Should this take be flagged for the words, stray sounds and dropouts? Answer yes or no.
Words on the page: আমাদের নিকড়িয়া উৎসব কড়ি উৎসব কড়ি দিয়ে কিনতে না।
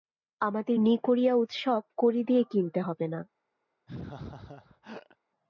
yes